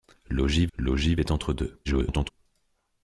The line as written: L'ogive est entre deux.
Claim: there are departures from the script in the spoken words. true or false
true